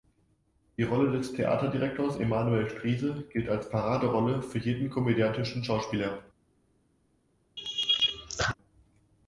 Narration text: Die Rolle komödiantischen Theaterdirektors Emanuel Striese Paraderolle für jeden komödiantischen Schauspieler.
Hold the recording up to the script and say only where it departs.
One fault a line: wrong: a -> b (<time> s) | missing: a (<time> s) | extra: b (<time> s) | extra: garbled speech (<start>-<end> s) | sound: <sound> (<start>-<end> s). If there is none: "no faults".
wrong: komödiantischen -> des (1.1 s)
extra: gilt als (3.3 s)
sound: laugh (7.6-8.5 s)